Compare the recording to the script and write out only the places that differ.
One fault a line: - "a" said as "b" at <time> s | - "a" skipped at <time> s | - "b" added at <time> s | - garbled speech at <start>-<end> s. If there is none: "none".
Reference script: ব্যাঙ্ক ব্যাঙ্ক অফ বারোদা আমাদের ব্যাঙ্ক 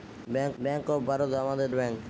none